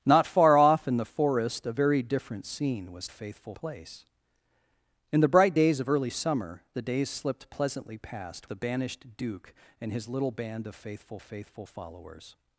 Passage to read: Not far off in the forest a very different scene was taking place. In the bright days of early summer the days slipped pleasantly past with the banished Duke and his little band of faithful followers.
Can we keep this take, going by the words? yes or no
no